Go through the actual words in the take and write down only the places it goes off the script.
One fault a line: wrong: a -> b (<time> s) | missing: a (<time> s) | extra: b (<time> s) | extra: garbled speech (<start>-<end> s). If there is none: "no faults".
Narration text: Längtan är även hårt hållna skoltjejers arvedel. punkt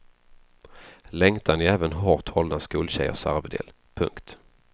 no faults